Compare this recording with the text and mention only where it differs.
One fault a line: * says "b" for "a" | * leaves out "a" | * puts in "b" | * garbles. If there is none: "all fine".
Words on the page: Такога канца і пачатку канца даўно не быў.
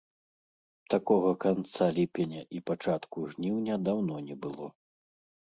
* puts in "ліпеня"
* says "жніўня" for "канца"
* says "было" for "быў"